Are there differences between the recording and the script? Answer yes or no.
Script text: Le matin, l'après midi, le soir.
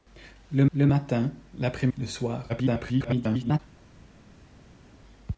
yes